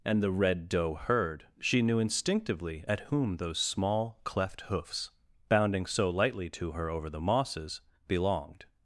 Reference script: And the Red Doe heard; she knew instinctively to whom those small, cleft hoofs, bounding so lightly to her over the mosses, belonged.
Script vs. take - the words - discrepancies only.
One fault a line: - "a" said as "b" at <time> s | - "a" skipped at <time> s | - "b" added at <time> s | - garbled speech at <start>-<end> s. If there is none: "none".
- "to" said as "at" at 2.9 s